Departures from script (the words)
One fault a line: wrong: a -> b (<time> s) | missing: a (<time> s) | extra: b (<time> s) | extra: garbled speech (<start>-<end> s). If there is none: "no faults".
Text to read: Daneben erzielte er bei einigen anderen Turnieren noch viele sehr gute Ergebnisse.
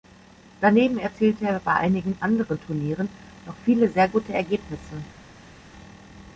no faults